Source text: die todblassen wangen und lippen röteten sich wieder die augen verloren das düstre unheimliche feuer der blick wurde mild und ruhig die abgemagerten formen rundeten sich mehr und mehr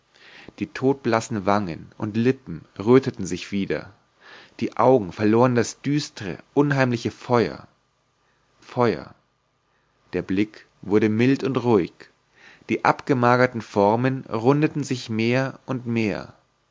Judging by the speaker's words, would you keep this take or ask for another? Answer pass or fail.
fail